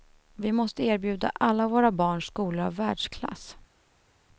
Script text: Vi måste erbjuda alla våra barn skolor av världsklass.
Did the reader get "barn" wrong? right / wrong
right